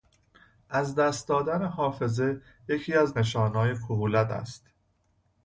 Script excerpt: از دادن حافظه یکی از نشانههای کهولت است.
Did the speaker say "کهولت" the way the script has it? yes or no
yes